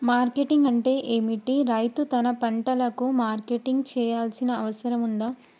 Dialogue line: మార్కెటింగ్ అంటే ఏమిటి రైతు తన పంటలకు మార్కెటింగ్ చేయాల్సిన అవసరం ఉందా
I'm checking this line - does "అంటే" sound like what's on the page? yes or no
yes